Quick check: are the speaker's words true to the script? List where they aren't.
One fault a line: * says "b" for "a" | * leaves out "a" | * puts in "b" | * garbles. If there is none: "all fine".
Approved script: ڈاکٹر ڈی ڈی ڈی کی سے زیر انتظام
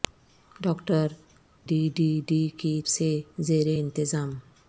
all fine